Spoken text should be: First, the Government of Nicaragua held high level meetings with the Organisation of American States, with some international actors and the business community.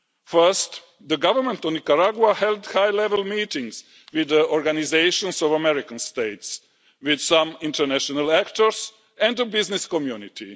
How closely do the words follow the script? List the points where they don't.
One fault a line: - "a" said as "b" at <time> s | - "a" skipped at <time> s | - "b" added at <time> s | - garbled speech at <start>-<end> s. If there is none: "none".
none